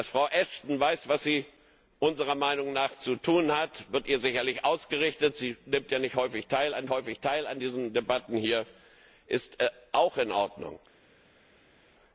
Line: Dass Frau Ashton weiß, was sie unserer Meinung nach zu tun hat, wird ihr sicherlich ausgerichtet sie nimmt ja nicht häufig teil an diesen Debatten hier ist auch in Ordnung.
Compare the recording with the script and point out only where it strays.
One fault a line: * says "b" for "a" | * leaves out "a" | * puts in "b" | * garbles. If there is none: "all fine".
* puts in "häufig teil an"